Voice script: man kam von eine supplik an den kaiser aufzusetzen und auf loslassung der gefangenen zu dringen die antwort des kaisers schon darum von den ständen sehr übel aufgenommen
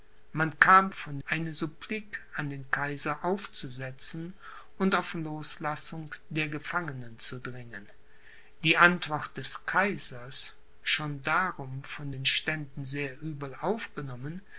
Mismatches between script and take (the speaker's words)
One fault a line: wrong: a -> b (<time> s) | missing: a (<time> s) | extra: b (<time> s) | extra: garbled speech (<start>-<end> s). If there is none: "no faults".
no faults